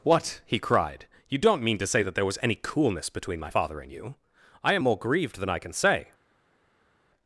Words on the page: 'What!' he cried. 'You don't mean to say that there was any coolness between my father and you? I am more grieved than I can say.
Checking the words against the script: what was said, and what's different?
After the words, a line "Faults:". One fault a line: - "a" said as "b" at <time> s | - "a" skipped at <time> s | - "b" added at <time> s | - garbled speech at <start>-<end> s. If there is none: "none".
'What!' he cried. 'You don't mean to say that there was any coolness between my father and you? I am more grieved than I can say.
Faults:
none